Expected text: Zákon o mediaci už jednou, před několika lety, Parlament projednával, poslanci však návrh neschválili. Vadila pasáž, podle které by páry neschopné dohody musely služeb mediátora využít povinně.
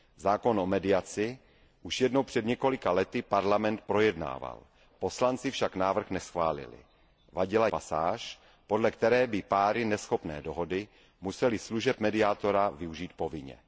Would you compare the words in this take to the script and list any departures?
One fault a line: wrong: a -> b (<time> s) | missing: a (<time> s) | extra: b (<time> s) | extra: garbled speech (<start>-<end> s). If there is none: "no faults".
no faults